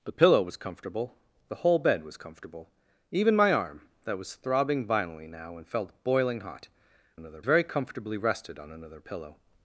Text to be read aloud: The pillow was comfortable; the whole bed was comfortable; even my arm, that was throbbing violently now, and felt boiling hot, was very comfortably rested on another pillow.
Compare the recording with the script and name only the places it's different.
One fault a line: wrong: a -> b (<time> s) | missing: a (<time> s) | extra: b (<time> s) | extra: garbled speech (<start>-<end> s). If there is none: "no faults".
wrong: was -> another (7.1 s)